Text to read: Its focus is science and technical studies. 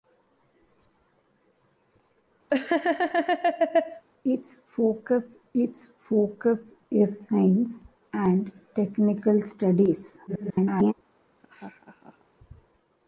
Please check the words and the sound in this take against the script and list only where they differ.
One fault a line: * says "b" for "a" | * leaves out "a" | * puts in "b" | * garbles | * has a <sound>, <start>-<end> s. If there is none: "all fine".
* has a laugh, 2.5-4.0 s
* puts in "its focus"
* garbles
* has a laugh, 11.4-12.2 s